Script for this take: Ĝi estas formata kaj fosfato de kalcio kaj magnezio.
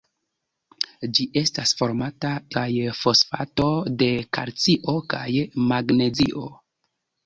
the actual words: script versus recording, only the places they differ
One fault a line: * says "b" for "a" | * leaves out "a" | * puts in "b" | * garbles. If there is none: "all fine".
all fine